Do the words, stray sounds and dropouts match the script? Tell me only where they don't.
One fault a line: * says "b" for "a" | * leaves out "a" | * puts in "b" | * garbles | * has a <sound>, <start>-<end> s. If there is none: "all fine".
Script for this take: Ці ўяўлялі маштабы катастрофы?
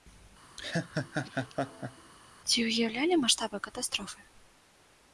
* has a laugh, 0.6-2.1 s